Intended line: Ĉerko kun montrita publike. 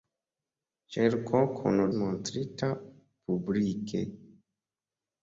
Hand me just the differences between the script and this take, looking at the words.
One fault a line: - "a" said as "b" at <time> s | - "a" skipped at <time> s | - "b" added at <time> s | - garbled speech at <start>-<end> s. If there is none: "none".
none